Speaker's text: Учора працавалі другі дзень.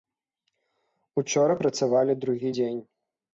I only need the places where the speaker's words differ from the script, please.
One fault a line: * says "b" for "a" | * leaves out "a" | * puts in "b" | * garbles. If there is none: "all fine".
all fine